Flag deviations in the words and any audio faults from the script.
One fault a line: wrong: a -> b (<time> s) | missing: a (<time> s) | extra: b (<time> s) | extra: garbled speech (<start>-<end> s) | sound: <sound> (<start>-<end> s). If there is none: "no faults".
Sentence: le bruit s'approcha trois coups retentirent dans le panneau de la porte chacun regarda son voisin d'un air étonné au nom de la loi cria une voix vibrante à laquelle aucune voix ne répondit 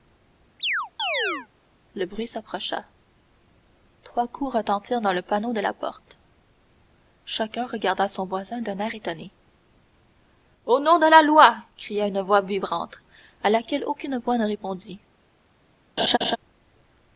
sound: chirp (0.6-1.5 s)
sound: laugh (16.0-16.4 s)